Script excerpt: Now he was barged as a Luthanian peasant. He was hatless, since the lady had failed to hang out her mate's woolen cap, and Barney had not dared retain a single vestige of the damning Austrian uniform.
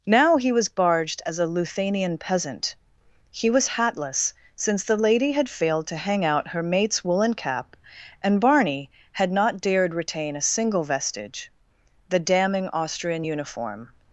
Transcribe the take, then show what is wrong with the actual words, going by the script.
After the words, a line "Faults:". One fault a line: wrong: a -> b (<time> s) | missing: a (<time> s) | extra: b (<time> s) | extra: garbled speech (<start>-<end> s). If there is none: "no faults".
Now he was barged as a Luthanian peasant. He was hatless, since the lady had failed to hang out her mate's woolen cap, and Barney had not dared retain a single vestige the damning Austrian uniform.
Faults:
missing: of (11.5 s)